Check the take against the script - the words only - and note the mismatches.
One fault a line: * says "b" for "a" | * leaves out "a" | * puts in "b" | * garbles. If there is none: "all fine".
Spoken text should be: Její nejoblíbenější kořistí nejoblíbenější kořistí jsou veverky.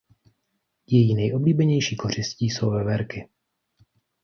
* leaves out "nejoblíbenější kořistí"